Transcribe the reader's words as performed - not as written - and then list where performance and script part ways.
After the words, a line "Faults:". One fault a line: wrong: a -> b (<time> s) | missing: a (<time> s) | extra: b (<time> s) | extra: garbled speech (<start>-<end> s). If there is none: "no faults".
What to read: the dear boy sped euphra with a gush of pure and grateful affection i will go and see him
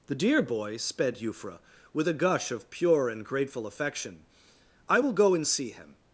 the dear boy sped euphra with a gush of pure and grateful affection i will go and see him
Faults:
no faults